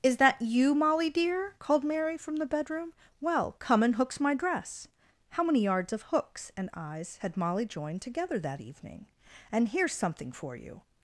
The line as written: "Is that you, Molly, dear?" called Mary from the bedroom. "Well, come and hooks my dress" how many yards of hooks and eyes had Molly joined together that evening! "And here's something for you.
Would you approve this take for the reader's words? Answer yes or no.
yes